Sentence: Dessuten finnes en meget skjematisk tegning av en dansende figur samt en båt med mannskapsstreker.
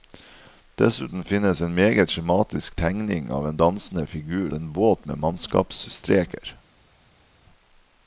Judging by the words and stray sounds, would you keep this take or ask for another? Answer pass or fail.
fail